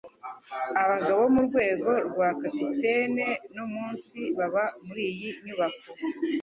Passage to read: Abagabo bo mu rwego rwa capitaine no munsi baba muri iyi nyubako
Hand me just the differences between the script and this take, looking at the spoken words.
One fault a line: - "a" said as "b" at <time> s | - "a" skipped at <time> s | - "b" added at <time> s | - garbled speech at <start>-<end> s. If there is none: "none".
none